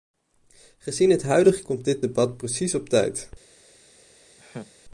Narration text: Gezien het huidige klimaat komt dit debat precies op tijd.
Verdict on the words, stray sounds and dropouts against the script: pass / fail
fail